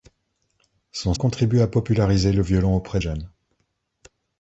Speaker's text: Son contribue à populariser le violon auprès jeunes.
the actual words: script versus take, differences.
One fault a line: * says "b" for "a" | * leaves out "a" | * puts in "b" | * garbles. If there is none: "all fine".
all fine